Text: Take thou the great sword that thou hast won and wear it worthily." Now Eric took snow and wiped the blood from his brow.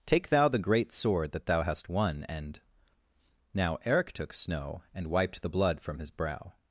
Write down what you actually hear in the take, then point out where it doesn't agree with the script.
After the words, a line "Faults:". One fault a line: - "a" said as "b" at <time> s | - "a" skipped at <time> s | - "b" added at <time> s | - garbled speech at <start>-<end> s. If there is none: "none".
Take thou the great sword that thou hast won and." Now Eric took snow and wiped the blood from his brow.
Faults:
- "wear it worthily" skipped at 2.6 s